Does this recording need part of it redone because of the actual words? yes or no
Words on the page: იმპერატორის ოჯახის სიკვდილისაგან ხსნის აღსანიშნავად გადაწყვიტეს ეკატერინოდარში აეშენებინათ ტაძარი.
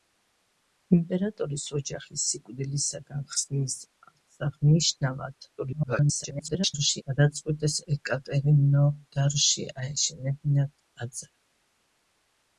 yes